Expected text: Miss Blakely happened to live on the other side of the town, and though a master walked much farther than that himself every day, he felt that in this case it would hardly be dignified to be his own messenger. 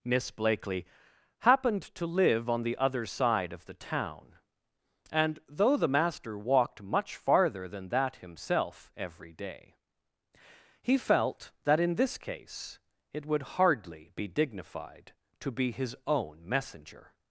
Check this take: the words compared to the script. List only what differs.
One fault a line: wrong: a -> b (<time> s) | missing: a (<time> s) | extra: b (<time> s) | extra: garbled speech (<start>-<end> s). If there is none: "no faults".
wrong: a -> the (5.8 s)